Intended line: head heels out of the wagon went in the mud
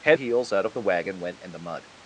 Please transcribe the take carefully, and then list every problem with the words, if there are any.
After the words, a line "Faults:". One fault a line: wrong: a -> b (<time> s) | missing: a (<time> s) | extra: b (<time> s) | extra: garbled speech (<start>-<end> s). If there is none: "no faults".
head heels out of the wagon went in the mud
Faults:
no faults